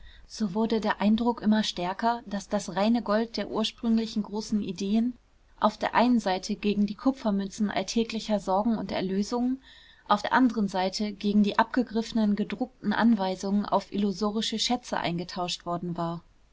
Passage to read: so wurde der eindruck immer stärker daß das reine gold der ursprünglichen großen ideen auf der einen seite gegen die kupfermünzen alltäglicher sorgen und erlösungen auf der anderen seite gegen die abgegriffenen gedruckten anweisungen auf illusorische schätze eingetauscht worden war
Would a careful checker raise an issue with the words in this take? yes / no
no